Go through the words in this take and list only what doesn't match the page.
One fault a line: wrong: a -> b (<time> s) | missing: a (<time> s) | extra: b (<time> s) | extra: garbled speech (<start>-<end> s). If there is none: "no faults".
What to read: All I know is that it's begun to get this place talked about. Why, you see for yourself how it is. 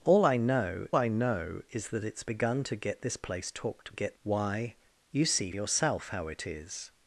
extra: I know (1.0 s)
wrong: about -> get (3.9 s)
missing: for (5.5 s)